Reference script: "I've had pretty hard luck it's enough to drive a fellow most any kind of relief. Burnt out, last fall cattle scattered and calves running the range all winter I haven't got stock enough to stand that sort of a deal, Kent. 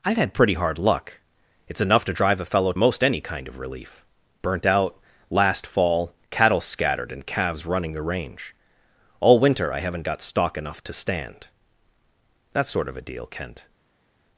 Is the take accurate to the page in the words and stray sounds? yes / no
yes